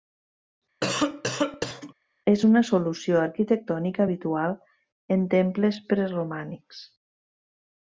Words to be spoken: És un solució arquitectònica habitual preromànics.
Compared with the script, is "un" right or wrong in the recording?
wrong